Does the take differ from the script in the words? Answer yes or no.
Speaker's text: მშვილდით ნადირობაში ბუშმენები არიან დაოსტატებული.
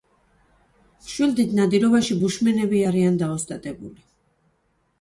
no